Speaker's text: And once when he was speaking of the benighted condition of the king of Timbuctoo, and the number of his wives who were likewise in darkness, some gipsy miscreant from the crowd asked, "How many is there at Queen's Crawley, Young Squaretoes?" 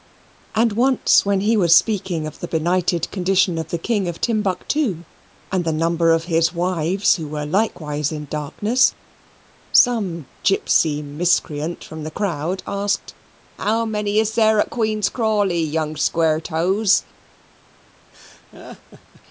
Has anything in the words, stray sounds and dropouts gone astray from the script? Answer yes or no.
yes